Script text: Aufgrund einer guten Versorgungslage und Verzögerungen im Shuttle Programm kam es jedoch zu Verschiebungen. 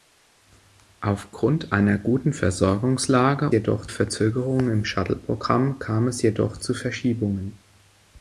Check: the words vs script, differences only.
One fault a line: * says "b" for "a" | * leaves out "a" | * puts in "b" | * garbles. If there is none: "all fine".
* says "jedoch" for "und"